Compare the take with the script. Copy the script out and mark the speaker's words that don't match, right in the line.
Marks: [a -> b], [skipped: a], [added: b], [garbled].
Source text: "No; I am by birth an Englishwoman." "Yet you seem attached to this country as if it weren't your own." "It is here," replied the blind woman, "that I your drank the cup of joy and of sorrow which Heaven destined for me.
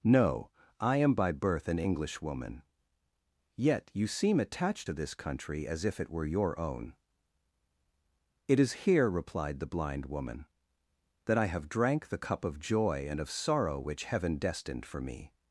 "No; I am by birth an Englishwoman." "Yet you seem attached to this country as if it [weren't -> were] your own." "It is here," replied the blind woman, "that I [your -> have] drank the cup of joy and of sorrow which Heaven destined for me.